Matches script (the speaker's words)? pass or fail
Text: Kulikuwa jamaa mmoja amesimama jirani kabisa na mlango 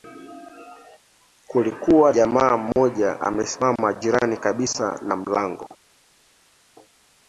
pass